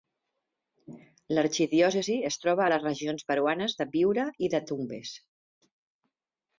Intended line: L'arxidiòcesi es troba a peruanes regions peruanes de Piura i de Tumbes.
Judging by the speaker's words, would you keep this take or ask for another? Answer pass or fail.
fail